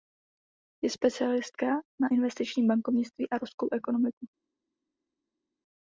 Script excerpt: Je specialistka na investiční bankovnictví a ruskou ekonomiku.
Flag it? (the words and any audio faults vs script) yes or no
no